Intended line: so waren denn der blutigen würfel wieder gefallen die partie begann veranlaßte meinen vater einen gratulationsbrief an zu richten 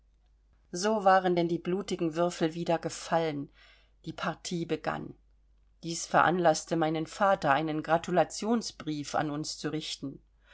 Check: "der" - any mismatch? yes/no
yes